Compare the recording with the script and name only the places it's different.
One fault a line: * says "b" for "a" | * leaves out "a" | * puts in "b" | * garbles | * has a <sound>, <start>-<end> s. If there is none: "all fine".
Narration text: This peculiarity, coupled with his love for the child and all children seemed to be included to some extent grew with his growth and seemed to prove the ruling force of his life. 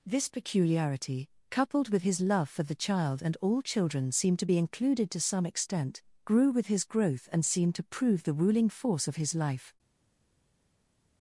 all fine